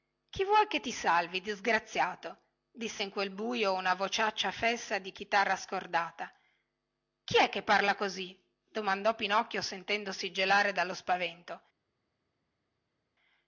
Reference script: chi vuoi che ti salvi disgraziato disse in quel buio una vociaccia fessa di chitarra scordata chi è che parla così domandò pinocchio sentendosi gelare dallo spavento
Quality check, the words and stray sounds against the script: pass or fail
pass